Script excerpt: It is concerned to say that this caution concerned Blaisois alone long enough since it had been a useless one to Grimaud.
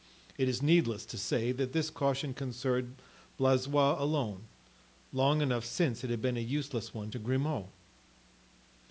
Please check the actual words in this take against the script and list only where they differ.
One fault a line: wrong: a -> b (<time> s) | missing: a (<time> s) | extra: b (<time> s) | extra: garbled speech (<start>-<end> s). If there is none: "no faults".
wrong: concerned -> needless (0.6 s)